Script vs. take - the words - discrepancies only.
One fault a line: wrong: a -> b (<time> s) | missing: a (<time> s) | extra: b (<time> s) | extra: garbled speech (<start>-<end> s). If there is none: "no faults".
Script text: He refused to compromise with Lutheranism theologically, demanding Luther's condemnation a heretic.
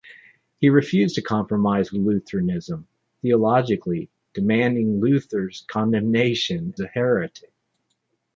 no faults